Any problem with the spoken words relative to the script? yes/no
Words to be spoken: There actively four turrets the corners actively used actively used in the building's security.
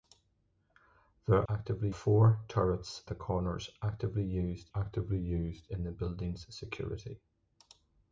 no